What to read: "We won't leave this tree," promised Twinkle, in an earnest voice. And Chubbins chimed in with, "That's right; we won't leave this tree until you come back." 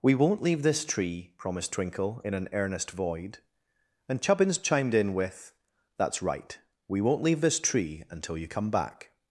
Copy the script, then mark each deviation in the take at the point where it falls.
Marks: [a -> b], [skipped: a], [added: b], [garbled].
"We won't leave this tree," promised Twinkle, in an earnest [voice. -> void] And Chubbins chimed in with, "That's right; we won't leave this tree until you come back."